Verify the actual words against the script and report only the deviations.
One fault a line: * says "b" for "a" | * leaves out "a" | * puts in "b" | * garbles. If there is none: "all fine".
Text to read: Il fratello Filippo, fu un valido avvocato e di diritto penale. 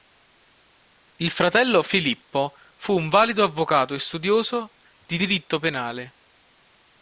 * puts in "studioso"